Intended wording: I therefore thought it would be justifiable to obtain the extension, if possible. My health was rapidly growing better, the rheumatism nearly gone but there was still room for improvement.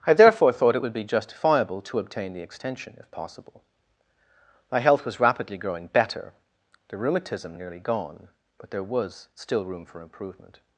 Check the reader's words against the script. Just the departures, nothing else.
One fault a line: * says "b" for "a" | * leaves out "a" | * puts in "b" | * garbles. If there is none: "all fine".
all fine